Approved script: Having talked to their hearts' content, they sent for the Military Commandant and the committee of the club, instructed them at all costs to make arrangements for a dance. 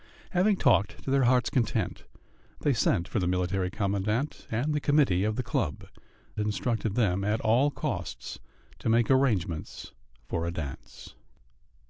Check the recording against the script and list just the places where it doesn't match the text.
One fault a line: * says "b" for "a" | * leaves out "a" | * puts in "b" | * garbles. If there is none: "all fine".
all fine